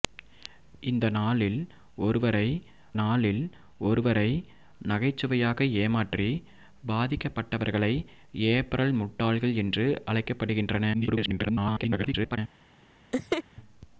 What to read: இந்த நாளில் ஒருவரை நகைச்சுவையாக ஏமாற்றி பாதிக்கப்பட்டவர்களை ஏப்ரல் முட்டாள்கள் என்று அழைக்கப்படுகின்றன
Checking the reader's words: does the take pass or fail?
fail